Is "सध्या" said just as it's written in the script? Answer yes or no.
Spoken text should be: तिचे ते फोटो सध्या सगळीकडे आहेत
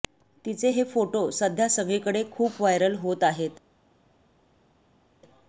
yes